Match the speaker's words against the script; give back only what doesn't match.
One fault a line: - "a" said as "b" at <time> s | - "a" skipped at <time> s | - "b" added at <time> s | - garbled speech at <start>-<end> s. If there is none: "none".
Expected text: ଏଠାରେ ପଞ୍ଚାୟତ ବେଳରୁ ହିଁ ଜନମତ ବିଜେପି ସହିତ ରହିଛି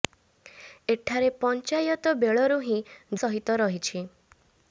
- "ଜନମତ ବିଜେପି" skipped at 2.8 s